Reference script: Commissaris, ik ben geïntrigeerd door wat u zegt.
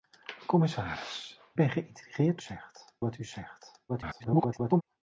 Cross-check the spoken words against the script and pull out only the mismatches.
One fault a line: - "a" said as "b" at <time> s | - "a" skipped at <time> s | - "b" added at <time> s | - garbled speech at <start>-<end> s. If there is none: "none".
- "ik" skipped at 1.4 s
- "door" said as "zegt" at 2.4 s
- garbled speech at 3.9-4.8 s